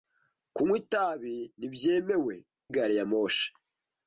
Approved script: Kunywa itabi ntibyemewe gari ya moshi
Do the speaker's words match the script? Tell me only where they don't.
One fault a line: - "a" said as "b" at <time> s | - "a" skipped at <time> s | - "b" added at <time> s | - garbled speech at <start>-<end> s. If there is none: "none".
none